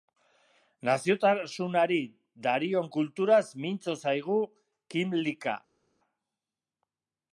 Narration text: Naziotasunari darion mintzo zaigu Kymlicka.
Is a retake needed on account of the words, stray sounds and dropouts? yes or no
yes